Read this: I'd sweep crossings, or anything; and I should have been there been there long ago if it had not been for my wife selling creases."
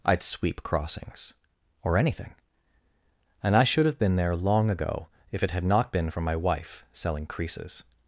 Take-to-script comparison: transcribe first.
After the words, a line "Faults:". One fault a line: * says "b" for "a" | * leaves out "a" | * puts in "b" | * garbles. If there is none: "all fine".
I'd sweep crossings, or anything; and I should have been there long ago if it had not been for my wife selling creases."
Faults:
* leaves out "been there"